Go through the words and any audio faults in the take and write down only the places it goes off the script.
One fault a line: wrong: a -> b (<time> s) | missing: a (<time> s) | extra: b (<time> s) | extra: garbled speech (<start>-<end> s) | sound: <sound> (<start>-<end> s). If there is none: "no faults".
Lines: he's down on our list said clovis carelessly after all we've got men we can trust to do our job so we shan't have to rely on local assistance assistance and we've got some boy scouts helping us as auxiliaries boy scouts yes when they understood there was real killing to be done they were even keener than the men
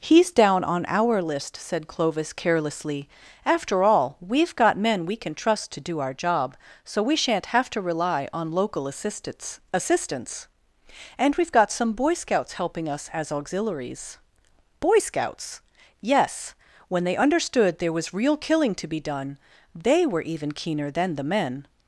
no faults